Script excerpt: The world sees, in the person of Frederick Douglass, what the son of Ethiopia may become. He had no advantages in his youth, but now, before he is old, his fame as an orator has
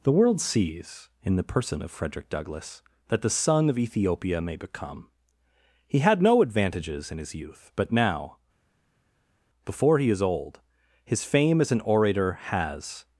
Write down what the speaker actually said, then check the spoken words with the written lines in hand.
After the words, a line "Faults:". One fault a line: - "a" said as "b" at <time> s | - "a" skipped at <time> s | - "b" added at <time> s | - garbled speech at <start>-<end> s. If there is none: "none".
The world sees, in the person of Frederick Douglass, that the son of Ethiopia may become. He had no advantages in his youth, but now, before he is old, his fame as an orator has
Faults:
- "what" said as "that" at 3.1 s